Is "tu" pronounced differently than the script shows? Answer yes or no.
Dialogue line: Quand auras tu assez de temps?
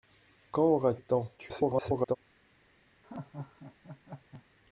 yes